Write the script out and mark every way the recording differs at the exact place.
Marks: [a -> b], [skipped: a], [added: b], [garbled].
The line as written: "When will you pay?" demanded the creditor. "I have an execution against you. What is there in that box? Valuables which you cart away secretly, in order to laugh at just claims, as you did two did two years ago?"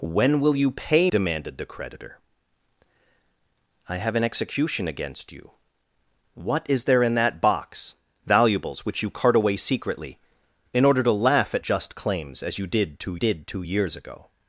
"When will you pay?" demanded the creditor. "I have an execution against you. What is there in that box? Valuables which you cart away secretly, in order to laugh at just claims, as you did two did two years ago?"